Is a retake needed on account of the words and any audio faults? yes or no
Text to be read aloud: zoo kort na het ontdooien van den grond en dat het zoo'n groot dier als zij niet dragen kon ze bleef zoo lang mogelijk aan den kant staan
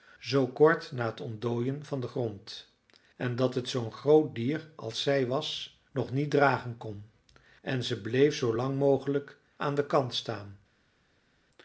yes